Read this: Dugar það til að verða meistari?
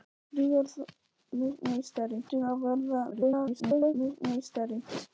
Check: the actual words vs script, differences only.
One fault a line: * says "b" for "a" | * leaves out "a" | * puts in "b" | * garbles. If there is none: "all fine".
* says "meistari" for "það"
* garbles